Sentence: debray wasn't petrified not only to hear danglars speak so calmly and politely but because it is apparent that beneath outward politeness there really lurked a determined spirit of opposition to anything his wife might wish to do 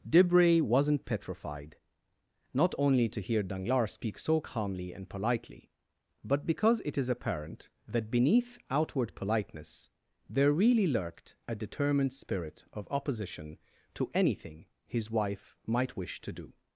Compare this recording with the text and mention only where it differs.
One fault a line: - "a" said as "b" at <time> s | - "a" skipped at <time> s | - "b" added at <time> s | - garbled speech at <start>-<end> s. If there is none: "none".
none